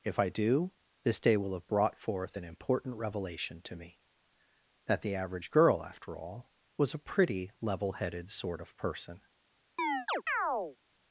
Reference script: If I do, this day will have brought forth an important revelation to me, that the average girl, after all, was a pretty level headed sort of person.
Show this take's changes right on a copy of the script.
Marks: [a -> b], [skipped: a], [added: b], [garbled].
If I do, this day will have brought forth an important revelation to me, that the average girl, after all, was a pretty level headed sort of person.